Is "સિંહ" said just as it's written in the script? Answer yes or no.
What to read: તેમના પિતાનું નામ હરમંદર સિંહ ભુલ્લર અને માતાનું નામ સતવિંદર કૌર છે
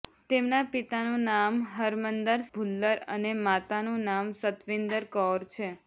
no